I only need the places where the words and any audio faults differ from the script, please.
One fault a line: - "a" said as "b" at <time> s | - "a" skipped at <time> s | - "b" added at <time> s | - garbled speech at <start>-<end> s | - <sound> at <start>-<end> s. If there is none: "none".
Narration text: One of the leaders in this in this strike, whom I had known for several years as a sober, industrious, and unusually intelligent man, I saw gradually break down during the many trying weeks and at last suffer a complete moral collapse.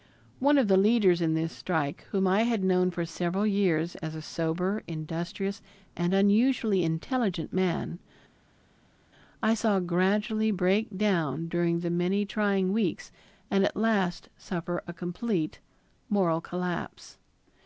- "in this" skipped at 1.5 s